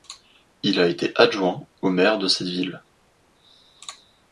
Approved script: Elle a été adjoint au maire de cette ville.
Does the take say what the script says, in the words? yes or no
no